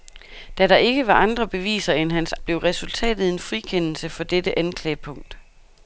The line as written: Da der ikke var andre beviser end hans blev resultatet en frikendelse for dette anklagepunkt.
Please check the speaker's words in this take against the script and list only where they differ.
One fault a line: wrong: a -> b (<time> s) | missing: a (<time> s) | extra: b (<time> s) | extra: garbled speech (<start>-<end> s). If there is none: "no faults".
no faults